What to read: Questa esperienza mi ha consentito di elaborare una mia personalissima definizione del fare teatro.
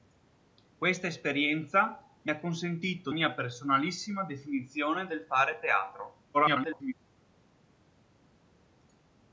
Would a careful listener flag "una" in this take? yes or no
yes